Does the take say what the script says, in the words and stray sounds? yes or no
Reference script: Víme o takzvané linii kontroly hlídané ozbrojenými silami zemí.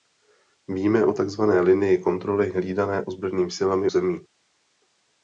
yes